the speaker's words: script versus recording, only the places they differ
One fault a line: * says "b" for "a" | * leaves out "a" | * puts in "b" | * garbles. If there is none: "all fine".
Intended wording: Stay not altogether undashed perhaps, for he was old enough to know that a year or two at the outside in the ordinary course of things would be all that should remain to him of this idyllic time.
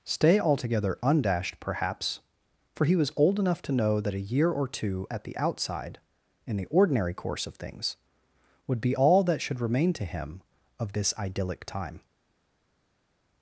* leaves out "not"